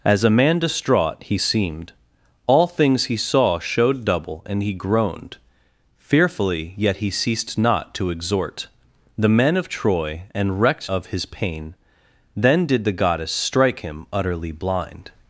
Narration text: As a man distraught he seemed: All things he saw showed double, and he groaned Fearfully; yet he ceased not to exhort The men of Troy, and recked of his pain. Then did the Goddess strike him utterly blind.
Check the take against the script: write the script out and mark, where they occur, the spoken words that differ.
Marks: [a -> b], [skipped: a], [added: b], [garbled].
As a man distraught he seemed: All things he saw showed double, and he groaned Fearfully; yet he ceased not to exhort The men of Troy, and recked of his pain. Then did the Goddess strike him utterly blind.